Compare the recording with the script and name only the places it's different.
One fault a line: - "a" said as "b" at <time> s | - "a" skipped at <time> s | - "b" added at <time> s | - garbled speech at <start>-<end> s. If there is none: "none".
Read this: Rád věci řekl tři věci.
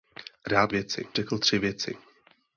none